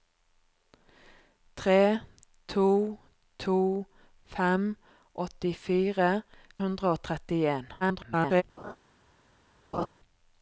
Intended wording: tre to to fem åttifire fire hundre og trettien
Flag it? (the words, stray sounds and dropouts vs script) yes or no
yes